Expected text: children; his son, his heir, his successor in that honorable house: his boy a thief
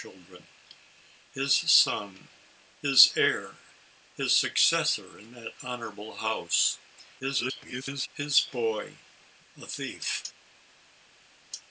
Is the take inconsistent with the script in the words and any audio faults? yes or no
yes